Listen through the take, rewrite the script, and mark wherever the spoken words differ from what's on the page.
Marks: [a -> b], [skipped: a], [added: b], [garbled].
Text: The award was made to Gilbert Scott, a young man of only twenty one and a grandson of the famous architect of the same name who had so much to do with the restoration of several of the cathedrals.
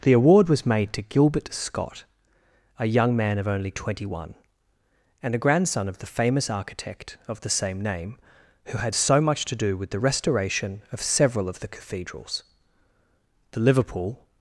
The award was made to Gilbert Scott, a young man of only twenty one and a grandson of the famous architect of the same name who had so much to do with the restoration of several of the cathedrals. [added: The Liverpool]